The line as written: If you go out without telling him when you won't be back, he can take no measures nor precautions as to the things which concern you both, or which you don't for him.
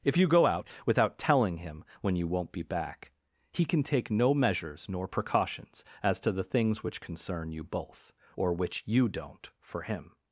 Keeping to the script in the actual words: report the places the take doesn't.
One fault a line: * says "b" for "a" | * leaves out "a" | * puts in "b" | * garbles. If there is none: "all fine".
all fine